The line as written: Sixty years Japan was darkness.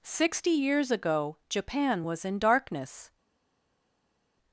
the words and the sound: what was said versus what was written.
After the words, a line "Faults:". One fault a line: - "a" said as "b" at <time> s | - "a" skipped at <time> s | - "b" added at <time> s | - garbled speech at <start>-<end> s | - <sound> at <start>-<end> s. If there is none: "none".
Sixty years ago Japan was in darkness.
Faults:
- "ago" added at 0.9 s
- "in" added at 2.2 s